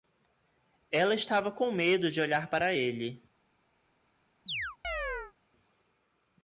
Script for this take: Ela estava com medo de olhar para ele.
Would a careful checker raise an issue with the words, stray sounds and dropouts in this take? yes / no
yes